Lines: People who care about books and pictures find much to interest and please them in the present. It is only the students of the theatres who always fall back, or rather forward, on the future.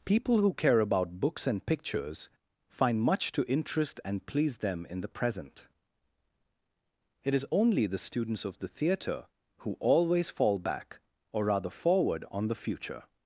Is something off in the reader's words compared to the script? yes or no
yes